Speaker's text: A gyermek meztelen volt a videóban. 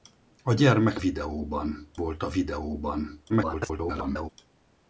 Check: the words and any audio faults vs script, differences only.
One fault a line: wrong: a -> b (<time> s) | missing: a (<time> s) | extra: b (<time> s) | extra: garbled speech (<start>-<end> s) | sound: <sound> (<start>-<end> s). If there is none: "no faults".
wrong: meztelen -> videóban (1.0 s)
extra: garbled speech (3.3-4.3 s)